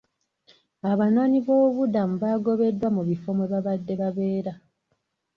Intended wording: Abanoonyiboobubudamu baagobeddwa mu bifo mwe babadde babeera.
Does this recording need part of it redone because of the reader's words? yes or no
no